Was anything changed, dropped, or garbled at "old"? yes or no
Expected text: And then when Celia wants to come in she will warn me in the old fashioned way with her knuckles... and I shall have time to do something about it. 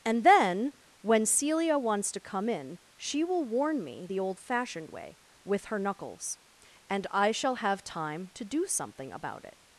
no